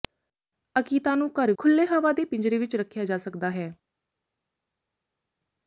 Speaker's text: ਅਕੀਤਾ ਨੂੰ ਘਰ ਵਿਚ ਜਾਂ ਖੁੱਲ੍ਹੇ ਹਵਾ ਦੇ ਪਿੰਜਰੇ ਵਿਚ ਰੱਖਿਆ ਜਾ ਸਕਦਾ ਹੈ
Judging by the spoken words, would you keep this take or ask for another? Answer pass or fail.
fail